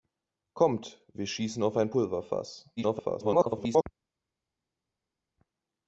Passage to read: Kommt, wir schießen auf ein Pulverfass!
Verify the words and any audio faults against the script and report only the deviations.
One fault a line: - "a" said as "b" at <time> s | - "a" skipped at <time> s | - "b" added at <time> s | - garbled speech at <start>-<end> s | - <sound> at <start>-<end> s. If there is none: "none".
- garbled speech at 2.8-3.8 s